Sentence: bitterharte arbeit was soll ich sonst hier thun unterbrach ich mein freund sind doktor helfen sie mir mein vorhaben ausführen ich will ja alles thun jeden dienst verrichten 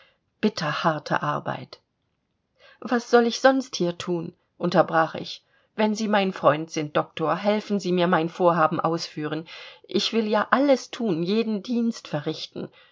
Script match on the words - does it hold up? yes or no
no